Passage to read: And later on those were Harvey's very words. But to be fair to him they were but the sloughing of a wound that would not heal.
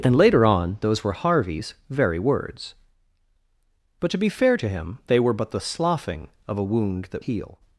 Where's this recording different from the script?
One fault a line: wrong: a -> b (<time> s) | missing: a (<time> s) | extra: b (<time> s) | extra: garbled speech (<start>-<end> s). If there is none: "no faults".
missing: would not (7.2 s)